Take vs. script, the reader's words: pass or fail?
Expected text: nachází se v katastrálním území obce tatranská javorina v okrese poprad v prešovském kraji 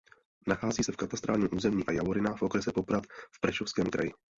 fail